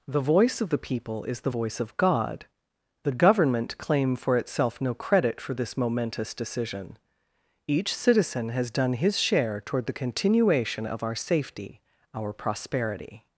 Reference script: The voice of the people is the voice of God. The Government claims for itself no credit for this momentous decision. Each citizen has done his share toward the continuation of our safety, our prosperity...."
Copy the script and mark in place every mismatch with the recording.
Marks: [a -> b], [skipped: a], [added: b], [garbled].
The voice of the people is the voice of God. The Government [claims -> claim] for itself no credit for this momentous decision. Each citizen has done his share toward the continuation of our safety, our prosperity...."